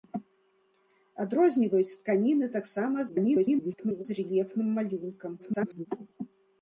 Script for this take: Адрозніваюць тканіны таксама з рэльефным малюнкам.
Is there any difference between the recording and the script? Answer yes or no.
yes